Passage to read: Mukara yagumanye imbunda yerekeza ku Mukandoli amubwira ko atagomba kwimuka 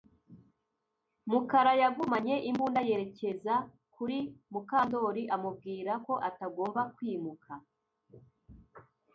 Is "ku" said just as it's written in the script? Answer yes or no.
no